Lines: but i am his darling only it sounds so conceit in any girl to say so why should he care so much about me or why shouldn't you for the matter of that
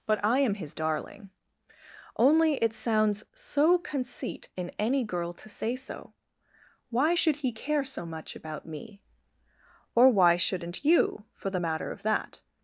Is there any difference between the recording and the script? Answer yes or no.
no